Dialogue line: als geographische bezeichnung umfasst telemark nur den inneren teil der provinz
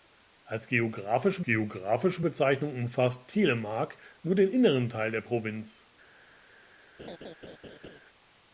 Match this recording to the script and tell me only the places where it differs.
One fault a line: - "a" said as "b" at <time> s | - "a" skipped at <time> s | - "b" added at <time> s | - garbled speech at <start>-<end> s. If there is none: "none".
- "geographische" added at 1.4 s